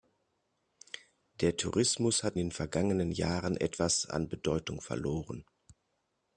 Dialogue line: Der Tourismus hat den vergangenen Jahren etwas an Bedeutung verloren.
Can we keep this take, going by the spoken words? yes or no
yes